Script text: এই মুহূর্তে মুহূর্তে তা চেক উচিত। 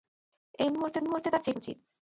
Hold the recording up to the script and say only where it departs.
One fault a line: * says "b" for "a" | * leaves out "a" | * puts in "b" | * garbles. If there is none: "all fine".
all fine